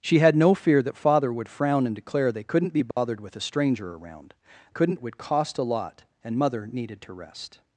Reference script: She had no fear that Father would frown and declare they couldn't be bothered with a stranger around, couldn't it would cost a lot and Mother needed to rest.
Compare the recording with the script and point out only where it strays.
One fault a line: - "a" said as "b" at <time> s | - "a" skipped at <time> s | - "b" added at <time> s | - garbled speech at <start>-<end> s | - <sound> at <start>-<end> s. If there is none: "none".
- dropout at 2.9-3.0 s